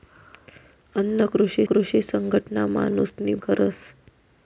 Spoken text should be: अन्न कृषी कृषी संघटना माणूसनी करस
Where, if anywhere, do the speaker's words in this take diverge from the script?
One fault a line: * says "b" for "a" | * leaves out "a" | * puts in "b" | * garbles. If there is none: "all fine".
all fine